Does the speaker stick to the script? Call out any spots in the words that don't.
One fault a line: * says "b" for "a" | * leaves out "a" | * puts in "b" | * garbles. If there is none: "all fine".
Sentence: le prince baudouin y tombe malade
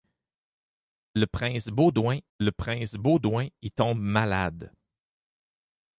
* puts in "le prince baudouin"